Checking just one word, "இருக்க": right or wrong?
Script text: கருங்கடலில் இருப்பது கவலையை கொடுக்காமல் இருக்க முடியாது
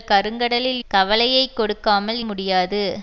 wrong